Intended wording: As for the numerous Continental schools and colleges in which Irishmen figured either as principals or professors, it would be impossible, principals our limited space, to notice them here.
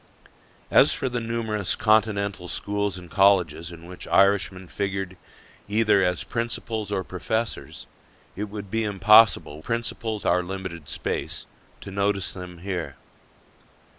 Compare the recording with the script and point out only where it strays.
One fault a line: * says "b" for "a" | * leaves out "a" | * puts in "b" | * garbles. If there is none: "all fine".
all fine